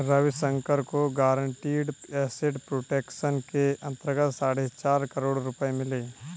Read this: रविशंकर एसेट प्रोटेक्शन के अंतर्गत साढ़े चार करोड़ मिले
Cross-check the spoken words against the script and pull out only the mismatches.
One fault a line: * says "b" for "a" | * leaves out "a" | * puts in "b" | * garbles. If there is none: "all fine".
* puts in "को गारंटीड"
* puts in "रुपये"